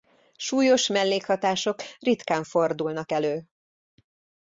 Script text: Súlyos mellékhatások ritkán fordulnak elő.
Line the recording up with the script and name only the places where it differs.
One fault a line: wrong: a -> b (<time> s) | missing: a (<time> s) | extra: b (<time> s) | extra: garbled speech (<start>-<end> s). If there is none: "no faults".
no faults